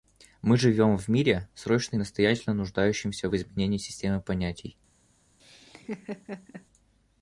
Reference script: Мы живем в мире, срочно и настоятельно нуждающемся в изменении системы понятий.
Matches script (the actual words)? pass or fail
pass